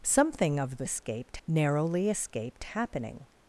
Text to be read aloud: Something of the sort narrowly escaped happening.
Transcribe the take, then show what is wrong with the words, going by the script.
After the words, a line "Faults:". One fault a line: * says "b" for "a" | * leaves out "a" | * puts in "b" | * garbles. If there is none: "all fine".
Something of the escaped narrowly escaped happening.
Faults:
* says "escaped" for "sort"